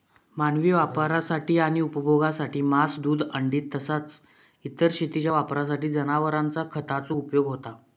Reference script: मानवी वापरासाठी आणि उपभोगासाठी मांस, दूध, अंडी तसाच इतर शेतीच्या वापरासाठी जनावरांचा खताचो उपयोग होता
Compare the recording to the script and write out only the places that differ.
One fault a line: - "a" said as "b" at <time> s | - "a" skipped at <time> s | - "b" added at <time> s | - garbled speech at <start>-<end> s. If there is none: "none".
none